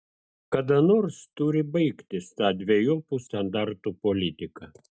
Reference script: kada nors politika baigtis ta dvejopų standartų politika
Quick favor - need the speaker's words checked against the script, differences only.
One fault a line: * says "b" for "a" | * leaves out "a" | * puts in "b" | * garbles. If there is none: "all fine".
* says "turi" for "politika"